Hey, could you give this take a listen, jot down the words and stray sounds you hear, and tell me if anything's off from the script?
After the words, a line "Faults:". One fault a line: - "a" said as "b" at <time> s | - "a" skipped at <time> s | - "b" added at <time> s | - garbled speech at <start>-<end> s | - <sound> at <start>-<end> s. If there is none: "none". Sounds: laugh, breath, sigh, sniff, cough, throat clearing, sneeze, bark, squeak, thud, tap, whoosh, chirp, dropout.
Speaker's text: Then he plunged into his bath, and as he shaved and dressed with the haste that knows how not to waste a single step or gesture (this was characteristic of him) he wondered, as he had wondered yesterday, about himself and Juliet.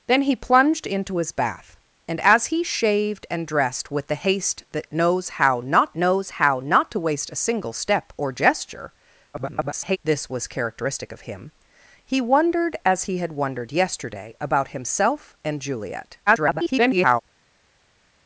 Then he plunged into his bath, and as he shaved and dressed with the haste that knows how not knows how not to waste a single step or gesture [garbled] (this was characteristic of him) he wondered, as he had wondered yesterday, about himself and Juliet. [garbled]
Faults:
- "knows how not" added at 5.9 s
- garbled speech at 9.3-10.0 s
- garbled speech at 16.3-17.2 s